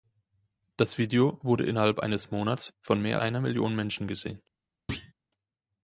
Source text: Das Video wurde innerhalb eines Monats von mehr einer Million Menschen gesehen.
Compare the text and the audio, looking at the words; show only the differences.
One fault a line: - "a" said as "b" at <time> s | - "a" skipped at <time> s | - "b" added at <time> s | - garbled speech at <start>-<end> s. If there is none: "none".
none